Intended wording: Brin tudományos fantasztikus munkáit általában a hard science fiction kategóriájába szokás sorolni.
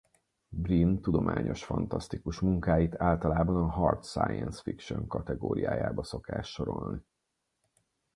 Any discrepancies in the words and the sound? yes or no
no